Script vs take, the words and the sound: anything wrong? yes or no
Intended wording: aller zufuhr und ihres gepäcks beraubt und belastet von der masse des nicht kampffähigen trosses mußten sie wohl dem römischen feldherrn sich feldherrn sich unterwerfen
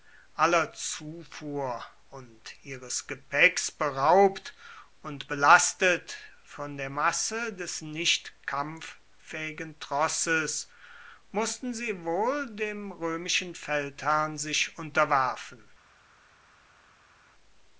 yes